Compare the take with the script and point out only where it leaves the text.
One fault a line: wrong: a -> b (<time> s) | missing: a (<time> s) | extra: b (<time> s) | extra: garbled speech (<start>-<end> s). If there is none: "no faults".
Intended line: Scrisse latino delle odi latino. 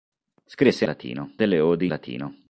no faults